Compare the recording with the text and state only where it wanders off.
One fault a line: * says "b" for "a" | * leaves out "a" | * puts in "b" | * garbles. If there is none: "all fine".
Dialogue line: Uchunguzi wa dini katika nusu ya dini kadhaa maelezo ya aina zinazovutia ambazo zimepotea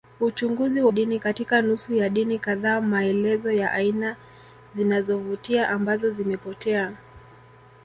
all fine